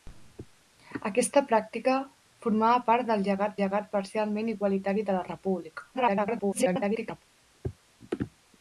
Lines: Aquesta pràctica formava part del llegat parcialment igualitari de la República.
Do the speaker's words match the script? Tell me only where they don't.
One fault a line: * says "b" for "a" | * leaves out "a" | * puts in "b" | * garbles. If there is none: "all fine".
* puts in "llegat"
* garbles